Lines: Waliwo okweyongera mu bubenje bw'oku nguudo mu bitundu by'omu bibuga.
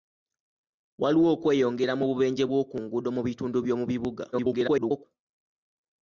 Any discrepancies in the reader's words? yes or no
yes